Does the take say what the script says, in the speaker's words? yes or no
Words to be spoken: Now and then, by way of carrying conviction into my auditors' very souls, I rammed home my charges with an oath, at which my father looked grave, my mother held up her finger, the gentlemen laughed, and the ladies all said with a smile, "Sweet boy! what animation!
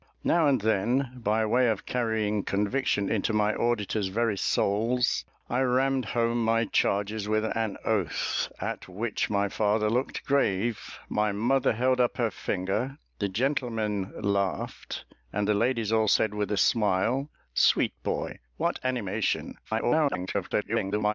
no